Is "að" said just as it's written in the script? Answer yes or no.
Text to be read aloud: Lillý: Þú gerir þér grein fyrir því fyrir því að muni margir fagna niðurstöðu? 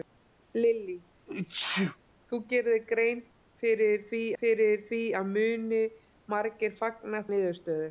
yes